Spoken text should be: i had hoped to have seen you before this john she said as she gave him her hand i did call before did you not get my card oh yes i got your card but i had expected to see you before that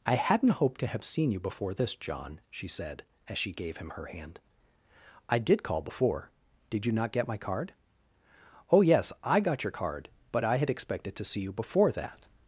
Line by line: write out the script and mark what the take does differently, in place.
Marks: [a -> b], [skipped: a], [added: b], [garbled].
i [had -> hadn't] hoped to have seen you before this john she said as she gave him her hand i did call before did you not get my card oh yes i got your card but i had expected to see you before that